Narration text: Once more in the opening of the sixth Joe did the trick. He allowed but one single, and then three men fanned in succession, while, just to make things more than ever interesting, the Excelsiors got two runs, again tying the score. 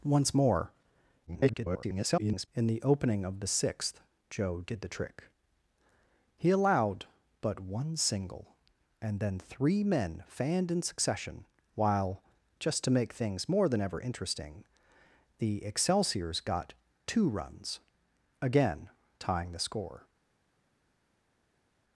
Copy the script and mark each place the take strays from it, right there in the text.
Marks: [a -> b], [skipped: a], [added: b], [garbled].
Once more [garbled] in the opening of the sixth Joe did the trick. He allowed but one single, and then three men fanned in succession, while, just to make things more than ever interesting, the Excelsiors got two runs, again tying the score.